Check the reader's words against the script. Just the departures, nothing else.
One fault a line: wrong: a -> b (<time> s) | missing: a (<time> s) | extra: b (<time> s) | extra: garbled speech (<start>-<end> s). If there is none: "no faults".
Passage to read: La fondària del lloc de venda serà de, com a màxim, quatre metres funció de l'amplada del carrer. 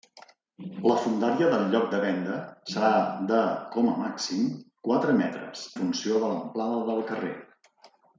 no faults